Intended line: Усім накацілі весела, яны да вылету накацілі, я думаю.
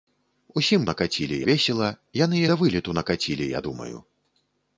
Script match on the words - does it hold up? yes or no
yes